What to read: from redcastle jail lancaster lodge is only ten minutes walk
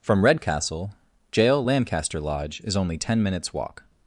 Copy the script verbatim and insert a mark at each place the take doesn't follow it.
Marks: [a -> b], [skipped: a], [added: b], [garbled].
from redcastle jail lancaster lodge is only ten minutes walk